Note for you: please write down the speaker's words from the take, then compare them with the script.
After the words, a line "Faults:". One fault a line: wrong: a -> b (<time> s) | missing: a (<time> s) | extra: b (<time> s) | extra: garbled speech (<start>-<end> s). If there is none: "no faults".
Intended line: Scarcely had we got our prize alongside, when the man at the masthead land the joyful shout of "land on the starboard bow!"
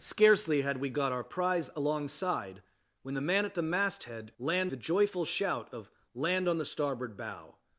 Scarcely had we got our prize alongside, when the man at the masthead land the joyful shout of "land on the starboard bow!"
Faults:
no faults